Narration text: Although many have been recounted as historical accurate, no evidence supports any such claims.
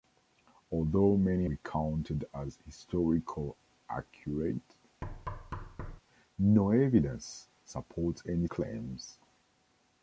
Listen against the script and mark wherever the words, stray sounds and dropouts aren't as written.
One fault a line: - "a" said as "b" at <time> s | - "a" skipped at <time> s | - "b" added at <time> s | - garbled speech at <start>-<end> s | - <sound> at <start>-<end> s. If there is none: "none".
- "have been" skipped at 1.4 s
- thud at 5.0-6.0 s
- "such" skipped at 8.5 s